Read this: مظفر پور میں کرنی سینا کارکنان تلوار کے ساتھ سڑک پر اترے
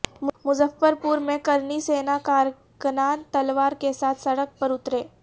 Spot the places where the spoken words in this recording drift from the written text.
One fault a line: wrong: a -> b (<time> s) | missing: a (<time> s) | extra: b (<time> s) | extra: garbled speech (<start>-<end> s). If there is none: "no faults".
no faults